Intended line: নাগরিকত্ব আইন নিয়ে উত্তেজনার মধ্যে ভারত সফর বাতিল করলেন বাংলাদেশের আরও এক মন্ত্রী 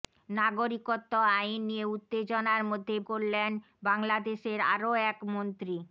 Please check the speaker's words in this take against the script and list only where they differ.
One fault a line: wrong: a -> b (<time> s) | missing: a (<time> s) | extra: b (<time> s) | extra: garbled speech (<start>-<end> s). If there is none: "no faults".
missing: ভারত সফর বাতিল (3.0 s)